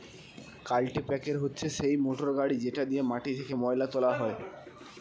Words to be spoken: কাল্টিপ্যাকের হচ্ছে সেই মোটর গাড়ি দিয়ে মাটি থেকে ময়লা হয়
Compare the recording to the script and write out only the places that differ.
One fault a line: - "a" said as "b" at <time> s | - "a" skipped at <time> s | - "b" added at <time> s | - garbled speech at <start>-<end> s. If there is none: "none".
- "যেটা" added at 2.6 s
- "তোলা" added at 3.9 s